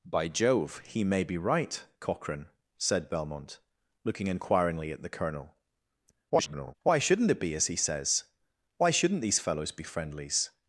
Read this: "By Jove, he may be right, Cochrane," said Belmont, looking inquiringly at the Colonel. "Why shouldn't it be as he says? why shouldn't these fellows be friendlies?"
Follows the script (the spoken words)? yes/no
no